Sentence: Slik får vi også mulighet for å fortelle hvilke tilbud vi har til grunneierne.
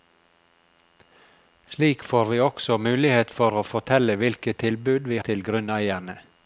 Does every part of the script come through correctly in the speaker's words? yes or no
no